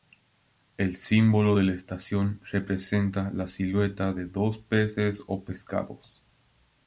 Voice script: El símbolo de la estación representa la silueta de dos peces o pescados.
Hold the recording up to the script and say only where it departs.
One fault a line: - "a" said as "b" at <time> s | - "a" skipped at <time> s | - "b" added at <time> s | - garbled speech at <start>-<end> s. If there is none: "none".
none